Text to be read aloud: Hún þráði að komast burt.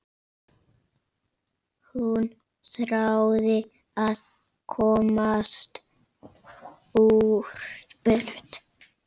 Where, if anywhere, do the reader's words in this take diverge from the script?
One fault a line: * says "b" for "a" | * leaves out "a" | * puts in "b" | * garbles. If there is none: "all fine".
all fine